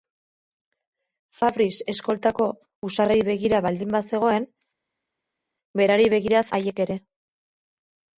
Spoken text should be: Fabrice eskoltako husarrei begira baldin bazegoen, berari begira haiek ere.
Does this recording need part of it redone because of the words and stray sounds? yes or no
no